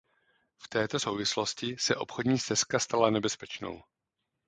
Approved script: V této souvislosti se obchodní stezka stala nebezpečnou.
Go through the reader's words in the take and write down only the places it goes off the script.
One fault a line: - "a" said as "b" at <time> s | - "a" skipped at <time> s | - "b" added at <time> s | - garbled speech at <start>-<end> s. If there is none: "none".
none